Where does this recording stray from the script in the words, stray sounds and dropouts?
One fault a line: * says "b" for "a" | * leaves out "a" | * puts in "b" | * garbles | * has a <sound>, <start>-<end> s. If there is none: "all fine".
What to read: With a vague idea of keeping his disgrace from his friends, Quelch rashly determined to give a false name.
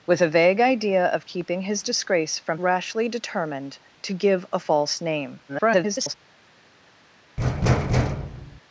* leaves out "his friends Quelch"
* garbles
* has a thud, 7.4-8.6 s